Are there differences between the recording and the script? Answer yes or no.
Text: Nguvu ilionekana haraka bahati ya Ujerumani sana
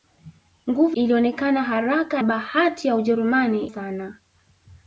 no